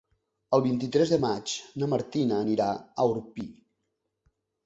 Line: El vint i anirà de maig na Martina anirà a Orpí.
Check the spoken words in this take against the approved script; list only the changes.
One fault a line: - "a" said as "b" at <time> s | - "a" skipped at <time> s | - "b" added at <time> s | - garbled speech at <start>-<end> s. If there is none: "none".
- "anirà" said as "tres" at 0.9 s